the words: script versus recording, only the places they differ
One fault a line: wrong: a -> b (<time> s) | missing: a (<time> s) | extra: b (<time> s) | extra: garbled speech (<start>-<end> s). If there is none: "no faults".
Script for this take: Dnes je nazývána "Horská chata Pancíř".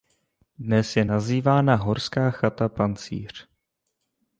no faults